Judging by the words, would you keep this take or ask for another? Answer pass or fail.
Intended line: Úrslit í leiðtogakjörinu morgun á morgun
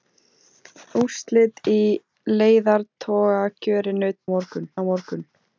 pass